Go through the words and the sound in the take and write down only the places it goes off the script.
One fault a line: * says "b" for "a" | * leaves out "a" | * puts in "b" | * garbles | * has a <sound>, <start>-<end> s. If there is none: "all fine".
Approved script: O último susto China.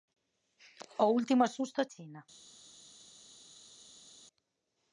all fine